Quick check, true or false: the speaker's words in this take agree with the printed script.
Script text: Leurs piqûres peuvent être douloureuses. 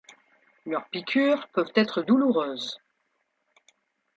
true